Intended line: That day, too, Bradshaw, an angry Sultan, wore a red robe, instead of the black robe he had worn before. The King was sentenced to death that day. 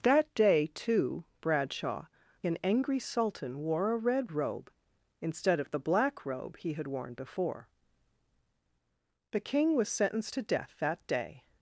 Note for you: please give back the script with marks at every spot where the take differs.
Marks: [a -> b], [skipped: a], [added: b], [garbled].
That day, too, Bradshaw, an angry Sultan, wore a red robe, instead of the black robe he had worn before. The King was sentenced to death that day.